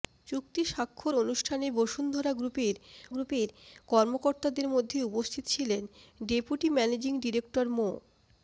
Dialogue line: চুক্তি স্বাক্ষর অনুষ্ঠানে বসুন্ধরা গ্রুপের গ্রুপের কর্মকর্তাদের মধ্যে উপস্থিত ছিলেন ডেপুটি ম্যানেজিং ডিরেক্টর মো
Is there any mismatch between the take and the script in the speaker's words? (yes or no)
no